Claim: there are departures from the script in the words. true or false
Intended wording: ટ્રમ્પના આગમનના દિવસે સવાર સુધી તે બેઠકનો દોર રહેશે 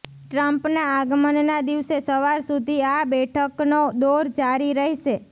true